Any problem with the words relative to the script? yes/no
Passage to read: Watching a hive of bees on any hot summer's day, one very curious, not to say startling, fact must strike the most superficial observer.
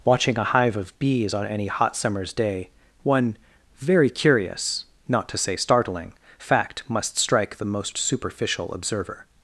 no